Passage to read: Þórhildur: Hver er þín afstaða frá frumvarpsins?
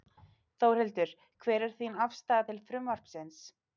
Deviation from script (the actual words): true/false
true